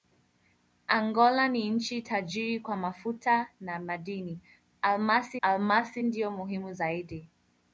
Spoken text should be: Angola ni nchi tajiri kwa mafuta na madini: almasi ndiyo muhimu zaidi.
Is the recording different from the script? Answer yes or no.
yes